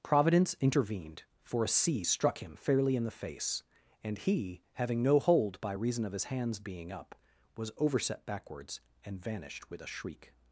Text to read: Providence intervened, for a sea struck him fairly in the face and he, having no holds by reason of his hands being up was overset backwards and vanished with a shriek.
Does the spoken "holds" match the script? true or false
false